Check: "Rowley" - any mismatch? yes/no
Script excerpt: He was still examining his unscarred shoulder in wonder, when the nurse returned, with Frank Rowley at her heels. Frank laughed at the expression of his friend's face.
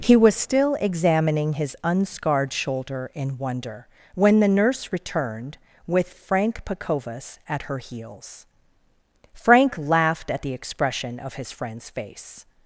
yes